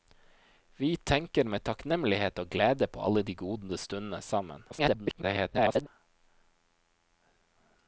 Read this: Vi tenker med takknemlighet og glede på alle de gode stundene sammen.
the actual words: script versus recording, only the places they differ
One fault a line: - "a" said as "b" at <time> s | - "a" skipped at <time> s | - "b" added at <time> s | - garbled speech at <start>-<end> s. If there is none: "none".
- garbled speech at 4.7-5.9 s